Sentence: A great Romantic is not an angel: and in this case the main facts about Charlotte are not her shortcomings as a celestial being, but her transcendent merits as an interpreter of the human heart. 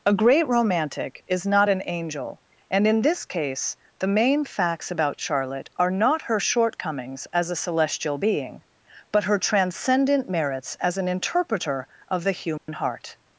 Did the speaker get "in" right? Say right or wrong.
right